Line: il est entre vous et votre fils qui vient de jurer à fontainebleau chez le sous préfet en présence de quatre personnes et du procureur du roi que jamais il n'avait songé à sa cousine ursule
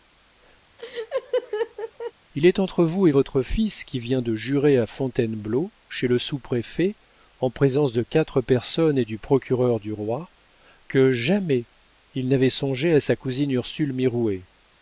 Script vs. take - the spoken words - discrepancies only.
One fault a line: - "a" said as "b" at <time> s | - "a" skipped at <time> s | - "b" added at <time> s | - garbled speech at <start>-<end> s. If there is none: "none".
none